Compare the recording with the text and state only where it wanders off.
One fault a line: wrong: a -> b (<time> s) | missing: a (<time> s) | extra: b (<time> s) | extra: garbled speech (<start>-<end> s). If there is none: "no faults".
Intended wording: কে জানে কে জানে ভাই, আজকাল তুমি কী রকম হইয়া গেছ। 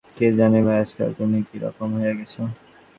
missing: কে জানে (0.6 s)